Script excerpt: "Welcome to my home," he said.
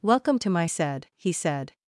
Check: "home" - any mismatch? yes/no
yes